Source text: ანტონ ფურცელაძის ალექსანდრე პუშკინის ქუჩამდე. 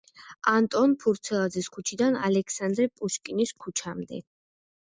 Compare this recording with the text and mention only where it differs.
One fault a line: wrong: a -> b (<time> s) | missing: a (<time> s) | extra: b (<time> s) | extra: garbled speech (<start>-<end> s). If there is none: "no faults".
extra: ქუჩიდან (1.8 s)